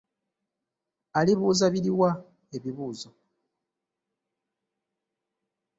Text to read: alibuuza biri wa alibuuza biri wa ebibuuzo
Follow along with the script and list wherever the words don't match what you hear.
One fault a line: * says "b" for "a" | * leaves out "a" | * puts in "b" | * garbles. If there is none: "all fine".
* leaves out "alibuuza biri wa"